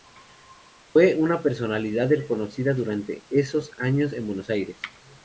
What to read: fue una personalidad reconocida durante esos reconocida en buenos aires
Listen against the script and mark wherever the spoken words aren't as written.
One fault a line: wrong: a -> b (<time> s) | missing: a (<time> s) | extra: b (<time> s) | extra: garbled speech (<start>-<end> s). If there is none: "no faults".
wrong: reconocida -> años (3.8 s)